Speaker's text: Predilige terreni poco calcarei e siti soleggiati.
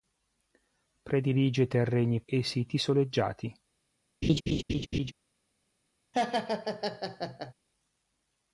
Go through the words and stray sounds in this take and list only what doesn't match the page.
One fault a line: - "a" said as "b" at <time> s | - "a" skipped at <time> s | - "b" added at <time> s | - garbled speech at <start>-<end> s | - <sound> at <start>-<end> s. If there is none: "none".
- "poco calcarei" skipped at 2.2 s
- laugh at 4.2-5.1 s
- laugh at 6.1-7.5 s